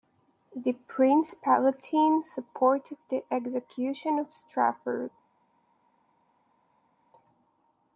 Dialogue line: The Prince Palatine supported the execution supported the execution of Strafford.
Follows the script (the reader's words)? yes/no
no